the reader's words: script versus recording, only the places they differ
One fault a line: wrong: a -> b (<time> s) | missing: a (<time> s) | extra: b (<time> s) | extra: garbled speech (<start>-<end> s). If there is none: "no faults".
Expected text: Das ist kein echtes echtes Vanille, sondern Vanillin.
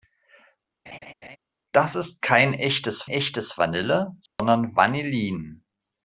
no faults